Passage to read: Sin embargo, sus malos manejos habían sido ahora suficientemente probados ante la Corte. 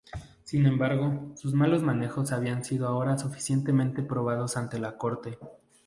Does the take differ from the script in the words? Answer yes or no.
no